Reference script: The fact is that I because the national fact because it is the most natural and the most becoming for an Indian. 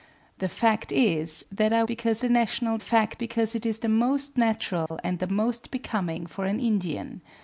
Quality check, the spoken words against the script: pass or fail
pass